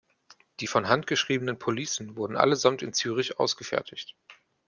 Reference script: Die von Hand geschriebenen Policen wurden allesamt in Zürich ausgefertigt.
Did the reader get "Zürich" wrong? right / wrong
right